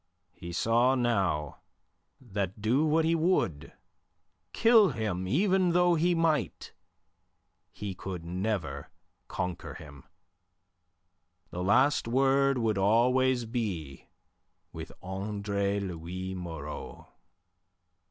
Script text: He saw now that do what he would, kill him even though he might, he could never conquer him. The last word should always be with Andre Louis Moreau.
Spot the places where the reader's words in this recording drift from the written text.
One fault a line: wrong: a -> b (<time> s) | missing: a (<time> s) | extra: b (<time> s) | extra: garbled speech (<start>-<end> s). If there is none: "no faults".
wrong: should -> would (12.6 s)